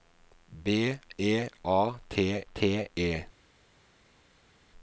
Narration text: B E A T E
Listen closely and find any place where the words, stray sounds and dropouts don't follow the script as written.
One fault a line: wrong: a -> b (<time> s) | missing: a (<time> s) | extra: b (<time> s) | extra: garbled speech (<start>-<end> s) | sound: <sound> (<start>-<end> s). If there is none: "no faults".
extra: T (2.5 s)